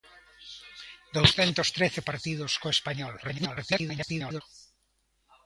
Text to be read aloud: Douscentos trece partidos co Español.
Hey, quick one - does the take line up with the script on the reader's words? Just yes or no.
no